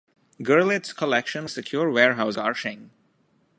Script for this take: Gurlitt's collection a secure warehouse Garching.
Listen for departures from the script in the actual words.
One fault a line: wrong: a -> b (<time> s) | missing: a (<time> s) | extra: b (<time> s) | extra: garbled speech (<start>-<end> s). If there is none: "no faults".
no faults